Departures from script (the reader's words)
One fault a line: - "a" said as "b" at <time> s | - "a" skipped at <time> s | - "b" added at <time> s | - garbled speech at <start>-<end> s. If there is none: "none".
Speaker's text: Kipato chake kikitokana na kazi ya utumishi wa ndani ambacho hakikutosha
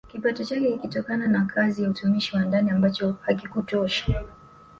none